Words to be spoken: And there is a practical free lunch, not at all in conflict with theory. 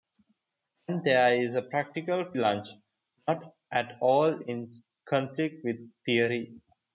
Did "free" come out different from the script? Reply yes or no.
yes